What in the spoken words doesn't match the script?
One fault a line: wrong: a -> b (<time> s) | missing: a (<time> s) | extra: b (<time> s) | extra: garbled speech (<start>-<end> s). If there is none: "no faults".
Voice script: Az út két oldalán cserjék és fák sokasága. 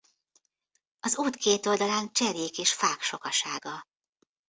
no faults